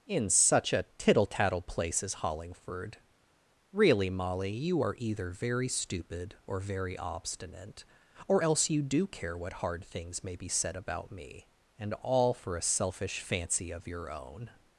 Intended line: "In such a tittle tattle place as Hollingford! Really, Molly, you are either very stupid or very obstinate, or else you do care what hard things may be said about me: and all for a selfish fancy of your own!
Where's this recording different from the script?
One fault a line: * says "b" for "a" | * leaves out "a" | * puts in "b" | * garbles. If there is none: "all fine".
all fine